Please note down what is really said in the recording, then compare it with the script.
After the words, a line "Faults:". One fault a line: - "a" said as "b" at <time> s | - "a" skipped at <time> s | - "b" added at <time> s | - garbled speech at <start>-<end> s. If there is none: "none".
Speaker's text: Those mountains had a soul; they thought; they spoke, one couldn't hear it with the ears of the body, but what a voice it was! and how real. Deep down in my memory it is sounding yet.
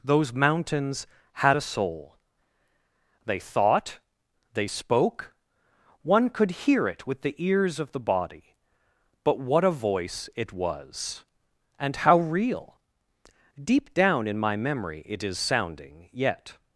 Those mountains had a soul; they thought; they spoke, one could hear it with the ears of the body, but what a voice it was! and how real. Deep down in my memory it is sounding yet.
Faults:
- "couldn't" said as "could" at 6.3 s